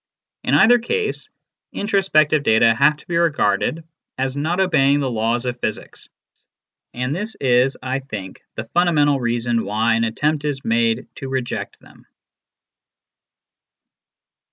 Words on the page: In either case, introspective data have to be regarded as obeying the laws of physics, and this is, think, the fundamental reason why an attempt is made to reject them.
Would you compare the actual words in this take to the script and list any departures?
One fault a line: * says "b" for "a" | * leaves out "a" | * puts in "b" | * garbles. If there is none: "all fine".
* puts in "not"
* puts in "I"